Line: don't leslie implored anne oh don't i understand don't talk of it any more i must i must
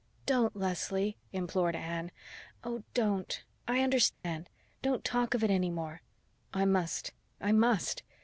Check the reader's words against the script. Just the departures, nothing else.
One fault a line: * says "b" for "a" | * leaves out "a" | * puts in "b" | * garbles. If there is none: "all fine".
all fine